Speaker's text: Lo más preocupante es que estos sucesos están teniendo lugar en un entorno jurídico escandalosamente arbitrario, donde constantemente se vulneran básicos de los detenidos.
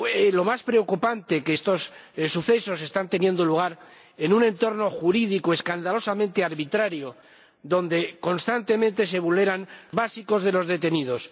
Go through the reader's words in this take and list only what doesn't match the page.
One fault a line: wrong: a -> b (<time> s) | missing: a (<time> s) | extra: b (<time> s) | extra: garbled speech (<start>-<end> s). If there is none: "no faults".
no faults